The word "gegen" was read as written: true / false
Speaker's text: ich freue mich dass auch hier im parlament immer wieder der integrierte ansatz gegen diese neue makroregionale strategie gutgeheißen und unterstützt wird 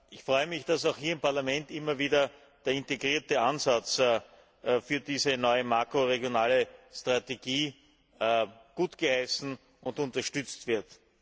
false